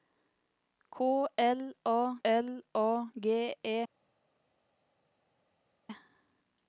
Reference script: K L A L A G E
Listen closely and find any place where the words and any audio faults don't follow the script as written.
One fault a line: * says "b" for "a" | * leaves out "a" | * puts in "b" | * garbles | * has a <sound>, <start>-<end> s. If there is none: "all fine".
all fine